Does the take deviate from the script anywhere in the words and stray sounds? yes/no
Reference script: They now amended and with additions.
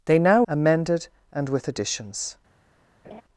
yes